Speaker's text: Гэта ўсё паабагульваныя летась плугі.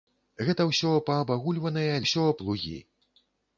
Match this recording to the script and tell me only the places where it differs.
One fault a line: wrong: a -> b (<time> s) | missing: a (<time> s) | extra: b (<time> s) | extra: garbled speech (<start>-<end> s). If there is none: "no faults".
wrong: летась -> ўсё (2.0 s)